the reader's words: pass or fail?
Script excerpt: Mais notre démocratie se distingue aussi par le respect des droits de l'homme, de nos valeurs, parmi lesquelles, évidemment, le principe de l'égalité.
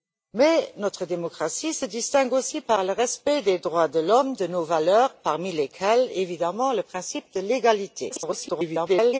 fail